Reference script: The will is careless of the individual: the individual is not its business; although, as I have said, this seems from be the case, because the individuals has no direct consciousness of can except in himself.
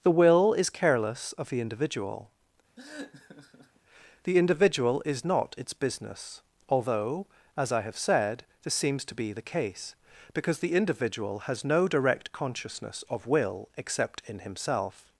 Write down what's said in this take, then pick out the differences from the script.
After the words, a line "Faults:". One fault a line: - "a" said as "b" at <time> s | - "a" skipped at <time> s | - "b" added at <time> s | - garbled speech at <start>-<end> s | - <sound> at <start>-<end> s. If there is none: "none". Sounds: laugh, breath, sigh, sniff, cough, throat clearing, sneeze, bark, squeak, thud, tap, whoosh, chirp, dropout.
The will is careless of the individual: the individual is not its business; although, as I have said, this seems to be the case, because the individual has no direct consciousness of will except in himself.
Faults:
- laugh at 2.8-3.8 s
- "from" said as "to" at 9.1 s
- "individuals" said as "individual" at 10.7 s
- "can" said as "will" at 13.3 s